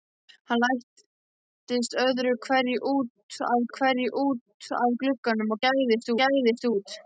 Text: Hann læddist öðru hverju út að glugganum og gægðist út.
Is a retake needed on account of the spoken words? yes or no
yes